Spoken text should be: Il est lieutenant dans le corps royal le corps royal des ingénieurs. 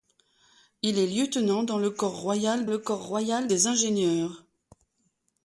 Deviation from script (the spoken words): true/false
false